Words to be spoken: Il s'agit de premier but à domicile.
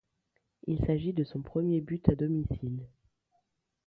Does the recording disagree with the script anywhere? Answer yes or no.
yes